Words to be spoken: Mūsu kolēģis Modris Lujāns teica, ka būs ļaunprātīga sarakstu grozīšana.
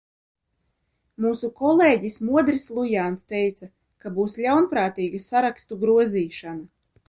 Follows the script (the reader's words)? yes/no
yes